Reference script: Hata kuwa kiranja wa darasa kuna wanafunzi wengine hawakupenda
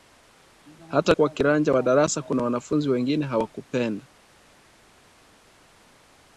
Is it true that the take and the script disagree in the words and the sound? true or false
false